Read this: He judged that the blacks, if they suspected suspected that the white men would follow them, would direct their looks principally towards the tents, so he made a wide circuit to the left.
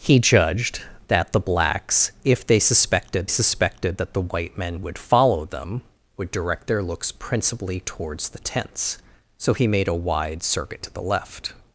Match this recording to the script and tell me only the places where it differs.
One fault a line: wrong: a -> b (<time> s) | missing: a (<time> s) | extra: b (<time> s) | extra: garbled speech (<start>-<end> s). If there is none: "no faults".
no faults